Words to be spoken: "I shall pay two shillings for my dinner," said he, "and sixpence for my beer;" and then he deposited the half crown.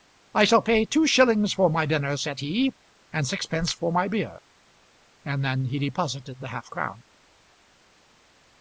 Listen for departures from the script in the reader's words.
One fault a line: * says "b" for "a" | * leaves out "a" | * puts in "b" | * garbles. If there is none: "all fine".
all fine